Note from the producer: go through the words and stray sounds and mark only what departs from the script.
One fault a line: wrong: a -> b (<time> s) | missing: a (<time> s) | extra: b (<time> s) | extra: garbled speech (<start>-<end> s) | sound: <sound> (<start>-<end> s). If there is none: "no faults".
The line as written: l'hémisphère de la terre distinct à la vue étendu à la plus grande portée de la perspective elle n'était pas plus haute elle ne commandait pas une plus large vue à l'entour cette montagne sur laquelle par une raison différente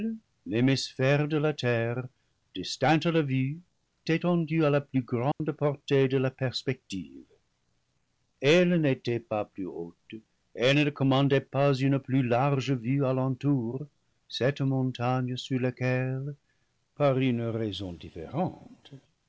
sound: dropout (5.3-5.4 s)